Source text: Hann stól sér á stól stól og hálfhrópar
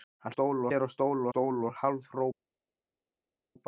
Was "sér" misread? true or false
false